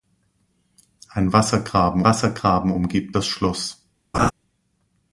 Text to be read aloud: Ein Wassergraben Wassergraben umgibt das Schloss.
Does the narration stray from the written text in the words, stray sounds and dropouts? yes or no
yes